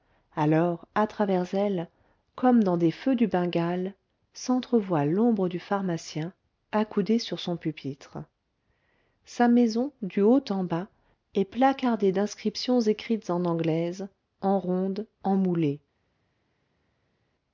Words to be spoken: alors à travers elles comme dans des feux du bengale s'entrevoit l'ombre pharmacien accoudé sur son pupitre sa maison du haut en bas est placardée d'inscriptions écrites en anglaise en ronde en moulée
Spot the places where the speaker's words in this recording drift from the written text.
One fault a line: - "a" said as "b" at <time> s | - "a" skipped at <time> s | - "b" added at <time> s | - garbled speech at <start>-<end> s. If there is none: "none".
- "du" added at 5.5 s